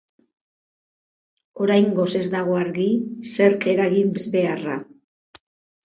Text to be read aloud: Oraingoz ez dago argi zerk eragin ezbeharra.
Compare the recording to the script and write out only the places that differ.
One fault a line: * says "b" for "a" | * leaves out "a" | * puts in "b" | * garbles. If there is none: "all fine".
all fine